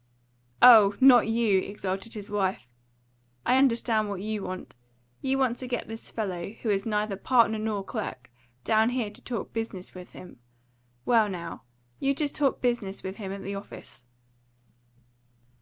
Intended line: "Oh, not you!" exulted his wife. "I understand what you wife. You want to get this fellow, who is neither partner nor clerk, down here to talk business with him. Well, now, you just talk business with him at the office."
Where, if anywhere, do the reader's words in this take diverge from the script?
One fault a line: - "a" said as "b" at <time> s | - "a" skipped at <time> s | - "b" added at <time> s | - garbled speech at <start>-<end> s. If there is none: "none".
- "wife" said as "want" at 4.4 s